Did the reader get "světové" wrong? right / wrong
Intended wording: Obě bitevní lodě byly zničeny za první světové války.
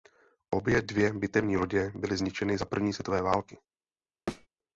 right